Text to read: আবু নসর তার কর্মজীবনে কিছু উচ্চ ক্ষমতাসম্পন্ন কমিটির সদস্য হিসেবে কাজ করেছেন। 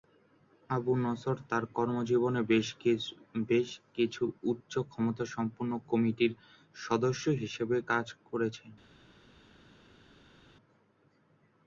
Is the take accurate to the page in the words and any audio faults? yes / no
no